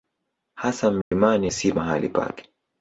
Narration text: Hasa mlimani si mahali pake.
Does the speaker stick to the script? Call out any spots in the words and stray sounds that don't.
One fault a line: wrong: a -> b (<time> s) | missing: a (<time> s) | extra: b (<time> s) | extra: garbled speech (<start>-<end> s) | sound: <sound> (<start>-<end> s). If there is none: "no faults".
sound: dropout (1.0-1.1 s)